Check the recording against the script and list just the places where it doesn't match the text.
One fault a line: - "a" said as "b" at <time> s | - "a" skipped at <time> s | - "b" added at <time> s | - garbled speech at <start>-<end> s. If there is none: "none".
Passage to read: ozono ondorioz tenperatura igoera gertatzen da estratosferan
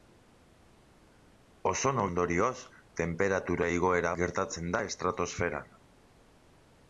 none